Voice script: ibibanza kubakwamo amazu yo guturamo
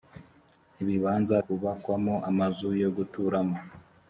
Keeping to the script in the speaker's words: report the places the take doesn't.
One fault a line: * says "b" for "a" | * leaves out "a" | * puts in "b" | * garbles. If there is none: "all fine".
all fine